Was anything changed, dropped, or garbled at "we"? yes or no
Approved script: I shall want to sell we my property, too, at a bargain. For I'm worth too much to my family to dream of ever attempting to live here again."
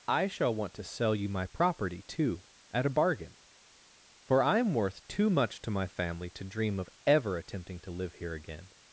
yes